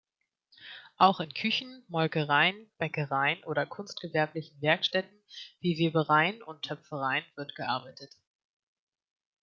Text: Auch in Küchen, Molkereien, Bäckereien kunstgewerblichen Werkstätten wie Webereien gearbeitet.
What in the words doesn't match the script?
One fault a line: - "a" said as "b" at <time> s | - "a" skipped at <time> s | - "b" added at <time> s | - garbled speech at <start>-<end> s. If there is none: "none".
- "oder" added at 3.4 s
- "und Töpfereien wird" added at 6.4 s